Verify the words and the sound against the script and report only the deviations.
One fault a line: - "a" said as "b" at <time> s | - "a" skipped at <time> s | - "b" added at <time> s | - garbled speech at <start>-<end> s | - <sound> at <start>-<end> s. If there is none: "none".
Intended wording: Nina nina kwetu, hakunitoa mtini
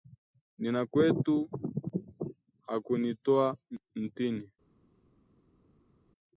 - "nina" skipped at 0.8 s